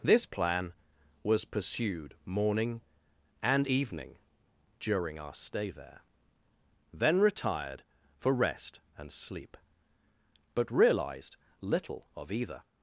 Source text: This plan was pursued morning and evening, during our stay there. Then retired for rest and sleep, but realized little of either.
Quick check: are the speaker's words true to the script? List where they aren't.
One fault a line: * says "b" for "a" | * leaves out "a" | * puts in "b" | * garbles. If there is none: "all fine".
all fine